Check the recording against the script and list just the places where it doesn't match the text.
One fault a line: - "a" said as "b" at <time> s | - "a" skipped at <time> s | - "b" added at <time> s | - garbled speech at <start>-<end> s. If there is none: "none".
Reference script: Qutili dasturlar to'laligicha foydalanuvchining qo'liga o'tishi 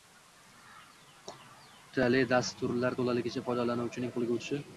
none